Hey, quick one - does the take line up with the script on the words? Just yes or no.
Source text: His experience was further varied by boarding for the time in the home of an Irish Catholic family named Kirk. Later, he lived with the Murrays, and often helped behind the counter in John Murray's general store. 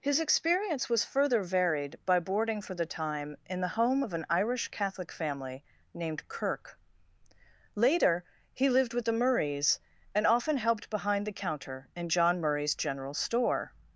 yes